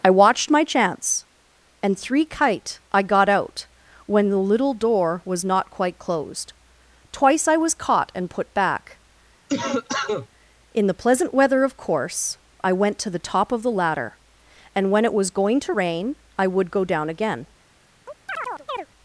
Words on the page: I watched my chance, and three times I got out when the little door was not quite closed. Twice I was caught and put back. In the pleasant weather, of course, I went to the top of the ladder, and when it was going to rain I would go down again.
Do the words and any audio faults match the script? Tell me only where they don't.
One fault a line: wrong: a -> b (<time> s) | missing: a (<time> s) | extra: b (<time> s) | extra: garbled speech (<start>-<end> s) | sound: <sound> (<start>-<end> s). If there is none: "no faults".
wrong: times -> kite (2.2 s)
sound: cough (9.5-10.3 s)
sound: chirp (18.1-18.9 s)